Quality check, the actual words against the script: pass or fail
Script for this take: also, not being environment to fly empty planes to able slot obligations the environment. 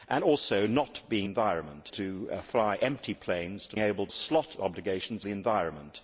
pass